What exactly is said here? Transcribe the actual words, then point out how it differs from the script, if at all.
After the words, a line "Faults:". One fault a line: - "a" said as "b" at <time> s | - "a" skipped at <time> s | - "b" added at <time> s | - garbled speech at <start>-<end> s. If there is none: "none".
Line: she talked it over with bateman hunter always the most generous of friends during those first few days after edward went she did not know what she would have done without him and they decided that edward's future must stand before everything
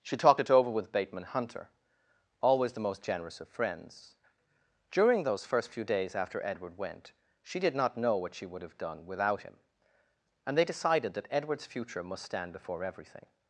she talked it over with bateman hunter always the most generous of friends during those first few days after edward went she did not know what she would have done without him and they decided that edward's future must stand before everything
Faults:
none